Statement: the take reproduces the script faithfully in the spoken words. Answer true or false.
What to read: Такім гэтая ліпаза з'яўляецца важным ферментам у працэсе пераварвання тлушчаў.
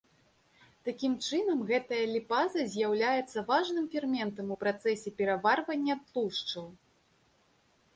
false